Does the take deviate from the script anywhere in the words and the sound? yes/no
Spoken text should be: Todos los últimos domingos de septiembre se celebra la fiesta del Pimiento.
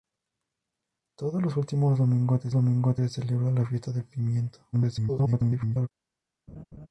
yes